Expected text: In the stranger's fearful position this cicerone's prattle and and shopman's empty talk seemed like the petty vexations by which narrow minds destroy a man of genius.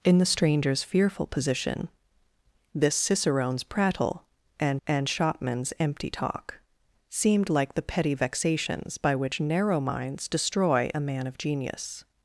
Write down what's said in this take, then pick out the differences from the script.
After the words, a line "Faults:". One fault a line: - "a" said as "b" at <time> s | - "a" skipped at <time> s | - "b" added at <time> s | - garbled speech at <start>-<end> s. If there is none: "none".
In the stranger's fearful position this cicerone's prattle and and shopman's empty talk seemed like the petty vexations by which narrow minds destroy a man of genius.
Faults:
none